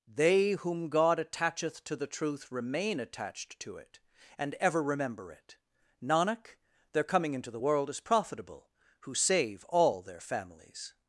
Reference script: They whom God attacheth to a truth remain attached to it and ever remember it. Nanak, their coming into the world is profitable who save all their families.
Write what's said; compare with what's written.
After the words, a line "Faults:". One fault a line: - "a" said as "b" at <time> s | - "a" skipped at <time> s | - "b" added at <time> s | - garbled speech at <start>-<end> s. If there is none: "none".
They whom God attacheth to the truth remain attached to it and ever remember it. Nanak, their coming into the world is profitable who save all their families.
Faults:
- "a" said as "the" at 1.9 s